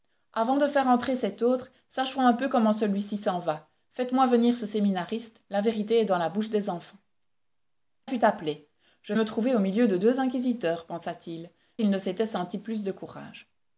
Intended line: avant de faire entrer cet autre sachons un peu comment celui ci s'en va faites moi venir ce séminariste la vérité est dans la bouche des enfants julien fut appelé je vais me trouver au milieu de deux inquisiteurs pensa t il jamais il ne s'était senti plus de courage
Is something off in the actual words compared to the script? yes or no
yes